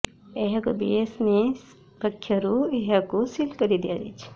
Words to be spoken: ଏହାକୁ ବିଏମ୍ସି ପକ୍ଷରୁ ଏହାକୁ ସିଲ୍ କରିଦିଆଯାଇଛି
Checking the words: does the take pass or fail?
pass